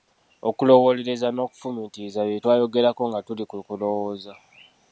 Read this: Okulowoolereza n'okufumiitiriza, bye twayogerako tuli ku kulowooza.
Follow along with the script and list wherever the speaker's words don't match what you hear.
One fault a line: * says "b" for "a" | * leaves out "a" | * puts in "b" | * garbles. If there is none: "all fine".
* puts in "nga"